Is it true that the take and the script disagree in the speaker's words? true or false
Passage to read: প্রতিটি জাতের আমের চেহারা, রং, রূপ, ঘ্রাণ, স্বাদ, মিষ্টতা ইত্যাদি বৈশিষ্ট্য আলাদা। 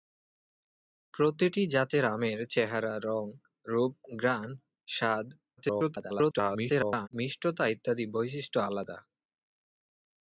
true